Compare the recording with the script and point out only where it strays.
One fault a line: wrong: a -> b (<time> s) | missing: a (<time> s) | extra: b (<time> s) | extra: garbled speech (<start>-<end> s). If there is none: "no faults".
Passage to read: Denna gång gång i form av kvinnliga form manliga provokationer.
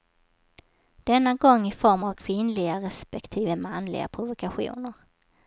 missing: gång (1.7 s)
wrong: form -> respektive (2.8 s)